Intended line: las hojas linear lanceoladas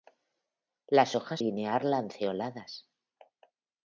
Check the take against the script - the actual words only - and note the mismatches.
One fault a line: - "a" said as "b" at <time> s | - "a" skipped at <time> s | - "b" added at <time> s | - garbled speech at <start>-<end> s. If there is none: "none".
none